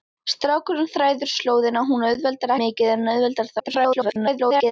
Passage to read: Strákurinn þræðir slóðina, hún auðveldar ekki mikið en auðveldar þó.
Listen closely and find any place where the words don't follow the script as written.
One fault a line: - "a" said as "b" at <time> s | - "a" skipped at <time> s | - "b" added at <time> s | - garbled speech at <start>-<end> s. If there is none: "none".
- "ekki" skipped at 2.5 s
- garbled speech at 3.6-4.7 s